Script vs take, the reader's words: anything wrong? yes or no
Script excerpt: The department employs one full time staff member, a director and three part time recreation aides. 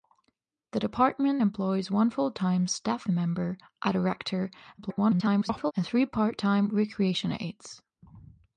yes